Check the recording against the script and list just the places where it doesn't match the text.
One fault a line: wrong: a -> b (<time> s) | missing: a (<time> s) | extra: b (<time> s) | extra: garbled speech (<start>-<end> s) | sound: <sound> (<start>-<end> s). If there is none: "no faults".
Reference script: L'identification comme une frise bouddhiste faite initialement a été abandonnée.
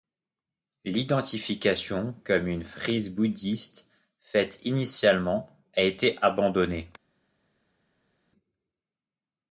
no faults